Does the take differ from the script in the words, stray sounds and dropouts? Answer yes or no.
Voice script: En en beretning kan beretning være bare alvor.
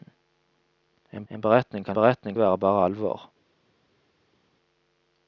no